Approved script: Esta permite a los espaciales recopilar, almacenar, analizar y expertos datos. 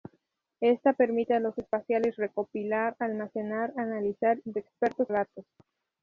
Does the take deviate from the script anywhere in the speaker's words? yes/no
no